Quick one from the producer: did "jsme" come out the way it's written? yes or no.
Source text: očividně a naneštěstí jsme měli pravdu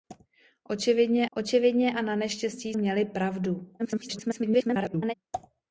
no